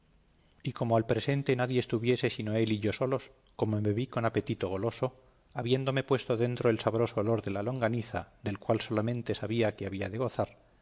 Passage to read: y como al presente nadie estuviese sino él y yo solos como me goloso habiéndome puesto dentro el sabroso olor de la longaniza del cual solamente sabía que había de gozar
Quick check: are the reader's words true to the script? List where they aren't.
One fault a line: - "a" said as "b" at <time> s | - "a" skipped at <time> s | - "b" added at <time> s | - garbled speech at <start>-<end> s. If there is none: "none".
- "vi con apetito" added at 3.9 s